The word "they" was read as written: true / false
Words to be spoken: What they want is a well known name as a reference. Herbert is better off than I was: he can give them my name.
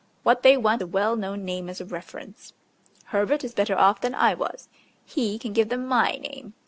true